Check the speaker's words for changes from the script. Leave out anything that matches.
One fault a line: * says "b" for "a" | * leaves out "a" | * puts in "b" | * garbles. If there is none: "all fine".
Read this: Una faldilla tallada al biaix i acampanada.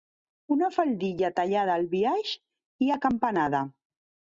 all fine